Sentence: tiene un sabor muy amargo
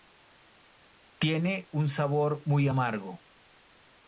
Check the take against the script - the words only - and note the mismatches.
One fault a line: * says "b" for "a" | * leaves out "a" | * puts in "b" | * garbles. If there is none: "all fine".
all fine